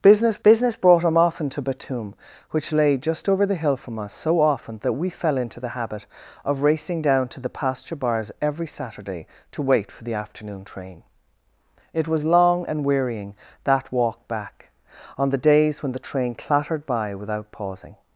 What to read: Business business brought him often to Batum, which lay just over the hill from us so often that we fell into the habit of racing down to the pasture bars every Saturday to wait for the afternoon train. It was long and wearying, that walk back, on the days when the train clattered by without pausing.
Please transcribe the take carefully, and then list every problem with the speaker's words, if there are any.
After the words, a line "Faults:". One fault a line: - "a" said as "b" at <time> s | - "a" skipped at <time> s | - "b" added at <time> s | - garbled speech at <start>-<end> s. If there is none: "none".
Business business brought him often to Batum, which lay just over the hill from us so often that we fell into the habit of racing down to the pasture bars every Saturday to wait for the afternoon train. It was long and wearying, that walk back, on the days when the train clattered by without pausing.
Faults:
none